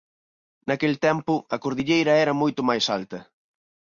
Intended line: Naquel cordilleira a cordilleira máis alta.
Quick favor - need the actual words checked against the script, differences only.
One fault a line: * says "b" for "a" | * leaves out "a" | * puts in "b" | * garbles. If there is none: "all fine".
* says "tempo" for "cordilleira"
* puts in "era moito"